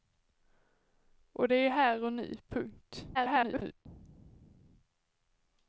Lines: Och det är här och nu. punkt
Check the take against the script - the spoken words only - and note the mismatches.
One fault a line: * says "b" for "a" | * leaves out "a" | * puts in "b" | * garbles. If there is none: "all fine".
* garbles